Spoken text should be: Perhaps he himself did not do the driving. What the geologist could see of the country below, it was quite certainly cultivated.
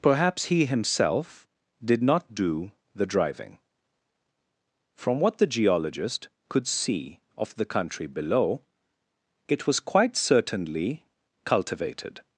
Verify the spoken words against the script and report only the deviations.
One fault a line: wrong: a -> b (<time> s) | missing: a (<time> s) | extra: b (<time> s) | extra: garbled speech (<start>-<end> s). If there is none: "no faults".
extra: From (4.9 s)